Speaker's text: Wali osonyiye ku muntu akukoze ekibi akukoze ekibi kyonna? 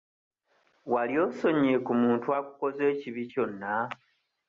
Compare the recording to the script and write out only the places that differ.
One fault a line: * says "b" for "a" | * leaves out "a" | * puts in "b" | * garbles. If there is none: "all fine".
* leaves out "akukoze ekibi"